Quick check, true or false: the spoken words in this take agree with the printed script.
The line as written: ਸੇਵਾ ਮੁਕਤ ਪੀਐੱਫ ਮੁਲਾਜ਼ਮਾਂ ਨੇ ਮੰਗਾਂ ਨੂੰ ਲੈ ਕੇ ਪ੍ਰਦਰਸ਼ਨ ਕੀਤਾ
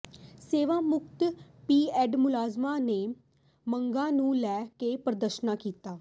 true